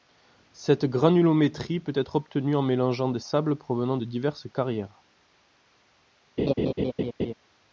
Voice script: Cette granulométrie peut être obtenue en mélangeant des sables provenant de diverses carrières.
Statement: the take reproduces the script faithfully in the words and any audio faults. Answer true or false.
false